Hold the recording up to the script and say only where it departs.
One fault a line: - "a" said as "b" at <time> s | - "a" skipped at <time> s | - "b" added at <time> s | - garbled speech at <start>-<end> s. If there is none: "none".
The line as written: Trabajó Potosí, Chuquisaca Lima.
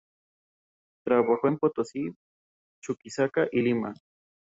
- "en" added at 1.5 s
- "y" added at 3.5 s